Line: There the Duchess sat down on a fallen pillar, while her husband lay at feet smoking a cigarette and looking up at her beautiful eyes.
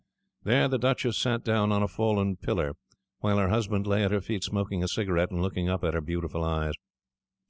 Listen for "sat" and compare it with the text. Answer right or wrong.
right